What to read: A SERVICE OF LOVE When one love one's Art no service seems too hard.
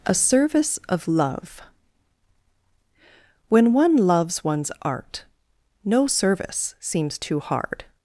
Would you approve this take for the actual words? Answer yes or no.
no